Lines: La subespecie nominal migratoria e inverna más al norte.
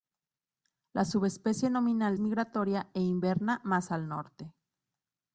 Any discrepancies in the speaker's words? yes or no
no